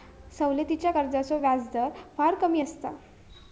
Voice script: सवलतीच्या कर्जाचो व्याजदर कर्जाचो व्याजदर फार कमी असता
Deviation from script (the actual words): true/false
true